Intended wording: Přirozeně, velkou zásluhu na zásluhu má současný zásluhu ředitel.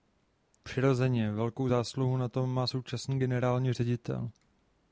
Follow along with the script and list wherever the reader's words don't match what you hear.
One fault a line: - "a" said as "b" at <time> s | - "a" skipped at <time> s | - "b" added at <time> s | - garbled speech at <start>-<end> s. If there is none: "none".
- "zásluhu" said as "tom" at 2.3 s
- "zásluhu" said as "generální" at 3.2 s